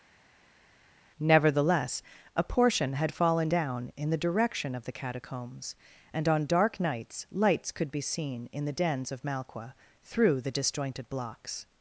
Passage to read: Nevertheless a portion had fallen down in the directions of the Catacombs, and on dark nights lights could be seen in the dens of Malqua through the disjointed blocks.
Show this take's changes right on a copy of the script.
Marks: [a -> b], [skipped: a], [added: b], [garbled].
Nevertheless a portion had fallen down in the [directions -> direction] of the Catacombs, and on dark nights lights could be seen in the dens of Malqua through the disjointed blocks.